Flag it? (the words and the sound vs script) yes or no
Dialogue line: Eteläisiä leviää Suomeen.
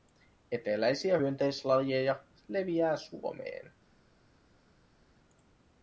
yes